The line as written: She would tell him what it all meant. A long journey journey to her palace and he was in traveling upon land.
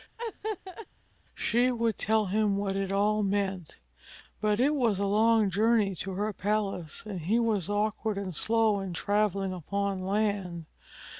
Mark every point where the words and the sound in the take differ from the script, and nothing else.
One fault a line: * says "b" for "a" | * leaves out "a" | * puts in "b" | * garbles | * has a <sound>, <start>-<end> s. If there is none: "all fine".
* has a laugh, 0.2-0.9 s
* puts in "But it was"
* leaves out "journey"
* puts in "awkward and slow"